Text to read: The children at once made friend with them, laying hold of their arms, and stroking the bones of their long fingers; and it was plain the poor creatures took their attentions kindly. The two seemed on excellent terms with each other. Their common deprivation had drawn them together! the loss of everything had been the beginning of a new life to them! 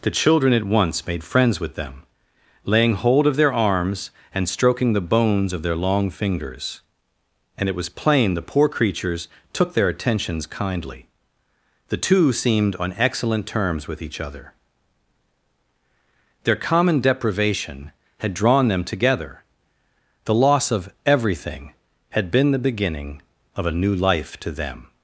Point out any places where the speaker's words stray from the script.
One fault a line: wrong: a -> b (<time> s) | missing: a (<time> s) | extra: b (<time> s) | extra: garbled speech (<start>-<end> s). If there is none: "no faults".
wrong: friend -> friends (1.2 s)